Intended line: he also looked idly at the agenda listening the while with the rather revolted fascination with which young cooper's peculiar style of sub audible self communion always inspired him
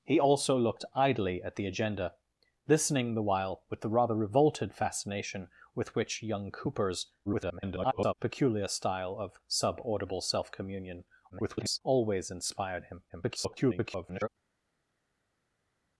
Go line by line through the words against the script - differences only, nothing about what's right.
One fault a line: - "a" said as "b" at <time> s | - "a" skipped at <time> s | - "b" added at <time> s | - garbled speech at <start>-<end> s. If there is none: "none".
- garbled speech at 7.3-8.1 s
- garbled speech at 11.3-11.8 s
- garbled speech at 13.1-14.3 s